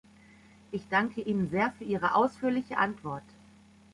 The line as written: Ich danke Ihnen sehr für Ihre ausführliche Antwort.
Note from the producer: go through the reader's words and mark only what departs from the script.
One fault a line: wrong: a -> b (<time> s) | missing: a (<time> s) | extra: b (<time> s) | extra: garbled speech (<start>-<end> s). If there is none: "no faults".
no faults